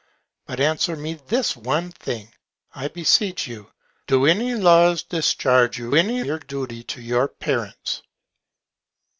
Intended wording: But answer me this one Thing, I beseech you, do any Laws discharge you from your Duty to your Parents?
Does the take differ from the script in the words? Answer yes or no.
yes